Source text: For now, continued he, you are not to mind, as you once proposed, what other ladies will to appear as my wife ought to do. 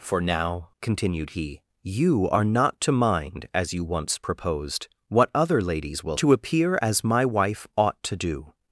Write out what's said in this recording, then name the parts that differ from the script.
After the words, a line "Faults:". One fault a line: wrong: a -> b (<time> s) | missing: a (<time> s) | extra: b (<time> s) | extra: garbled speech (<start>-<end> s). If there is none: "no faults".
For now, continued he, you are not to mind, as you once proposed, what other ladies will to appear as my wife ought to do.
Faults:
no faults